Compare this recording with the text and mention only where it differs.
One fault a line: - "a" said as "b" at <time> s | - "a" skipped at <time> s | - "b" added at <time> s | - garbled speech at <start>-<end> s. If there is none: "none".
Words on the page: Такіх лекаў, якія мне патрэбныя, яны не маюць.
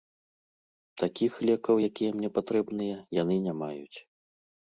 none